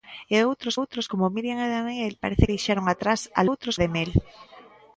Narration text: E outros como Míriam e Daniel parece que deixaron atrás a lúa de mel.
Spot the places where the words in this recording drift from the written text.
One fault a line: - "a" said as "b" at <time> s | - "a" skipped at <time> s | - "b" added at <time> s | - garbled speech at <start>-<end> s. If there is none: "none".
- "outros" added at 0.8 s
- "que" skipped at 2.4 s
- "lúa" said as "outros" at 3.5 s